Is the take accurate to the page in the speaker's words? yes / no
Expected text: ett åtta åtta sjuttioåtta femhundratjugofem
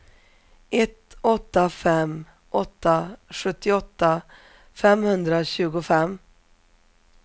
no